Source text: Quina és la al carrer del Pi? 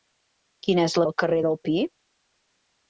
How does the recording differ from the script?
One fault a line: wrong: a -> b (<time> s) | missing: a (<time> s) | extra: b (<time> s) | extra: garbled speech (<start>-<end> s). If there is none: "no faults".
no faults